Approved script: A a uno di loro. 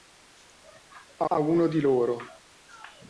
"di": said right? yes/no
yes